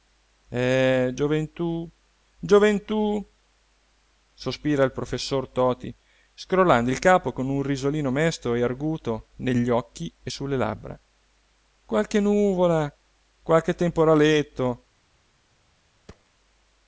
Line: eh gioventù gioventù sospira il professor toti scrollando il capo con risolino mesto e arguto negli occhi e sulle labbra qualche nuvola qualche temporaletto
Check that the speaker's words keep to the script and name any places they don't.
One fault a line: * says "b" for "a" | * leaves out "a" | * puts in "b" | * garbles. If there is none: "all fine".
* puts in "un"